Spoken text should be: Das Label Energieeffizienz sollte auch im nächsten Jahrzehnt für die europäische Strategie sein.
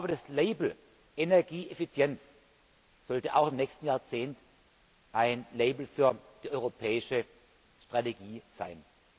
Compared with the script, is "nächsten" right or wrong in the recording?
right